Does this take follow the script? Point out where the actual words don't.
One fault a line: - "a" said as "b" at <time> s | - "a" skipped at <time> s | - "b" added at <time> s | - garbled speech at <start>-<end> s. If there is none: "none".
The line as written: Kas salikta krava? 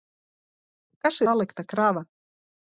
none